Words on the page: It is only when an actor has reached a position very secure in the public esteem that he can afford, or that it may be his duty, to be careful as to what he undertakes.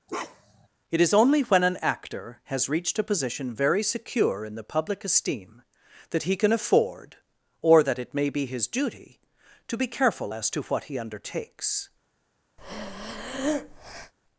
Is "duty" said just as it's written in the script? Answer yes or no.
yes